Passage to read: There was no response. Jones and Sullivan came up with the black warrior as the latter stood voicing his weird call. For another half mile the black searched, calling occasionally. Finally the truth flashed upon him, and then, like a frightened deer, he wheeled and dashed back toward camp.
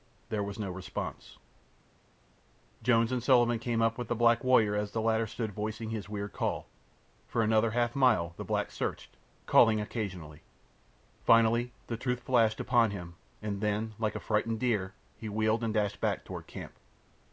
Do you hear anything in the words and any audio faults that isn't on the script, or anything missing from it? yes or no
no